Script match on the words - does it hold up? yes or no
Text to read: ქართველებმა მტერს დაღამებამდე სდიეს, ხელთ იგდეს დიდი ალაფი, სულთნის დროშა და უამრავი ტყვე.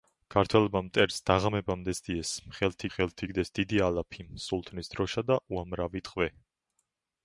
no